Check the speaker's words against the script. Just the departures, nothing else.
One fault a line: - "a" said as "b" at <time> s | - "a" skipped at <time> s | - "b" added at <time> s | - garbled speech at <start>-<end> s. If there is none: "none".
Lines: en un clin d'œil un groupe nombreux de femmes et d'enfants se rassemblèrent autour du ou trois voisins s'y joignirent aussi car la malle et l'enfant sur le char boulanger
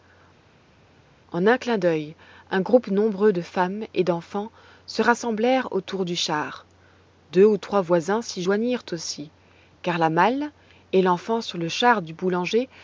- "char deux" added at 6.2 s
- "du" added at 12.0 s